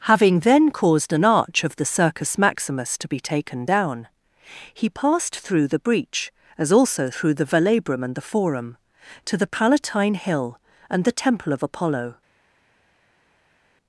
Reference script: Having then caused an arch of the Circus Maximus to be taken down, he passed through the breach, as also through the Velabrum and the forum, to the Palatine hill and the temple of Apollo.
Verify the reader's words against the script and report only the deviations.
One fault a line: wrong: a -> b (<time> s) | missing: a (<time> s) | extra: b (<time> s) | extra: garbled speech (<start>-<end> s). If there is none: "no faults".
no faults